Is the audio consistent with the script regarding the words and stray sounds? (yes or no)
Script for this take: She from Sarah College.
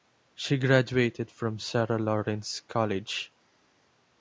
no